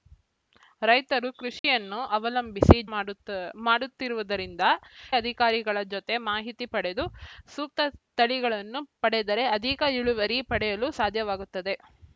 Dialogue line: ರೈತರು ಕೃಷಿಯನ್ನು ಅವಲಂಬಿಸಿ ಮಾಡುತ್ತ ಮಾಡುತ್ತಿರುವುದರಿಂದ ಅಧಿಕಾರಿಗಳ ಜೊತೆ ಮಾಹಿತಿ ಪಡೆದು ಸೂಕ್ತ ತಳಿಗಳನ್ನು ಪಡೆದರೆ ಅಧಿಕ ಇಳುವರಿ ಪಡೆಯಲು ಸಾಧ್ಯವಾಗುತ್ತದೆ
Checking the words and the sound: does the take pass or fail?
fail